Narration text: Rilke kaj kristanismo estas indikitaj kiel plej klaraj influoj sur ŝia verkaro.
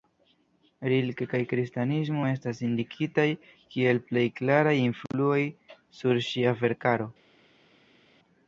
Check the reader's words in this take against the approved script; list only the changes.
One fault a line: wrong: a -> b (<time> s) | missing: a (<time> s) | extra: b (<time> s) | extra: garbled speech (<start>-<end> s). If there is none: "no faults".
no faults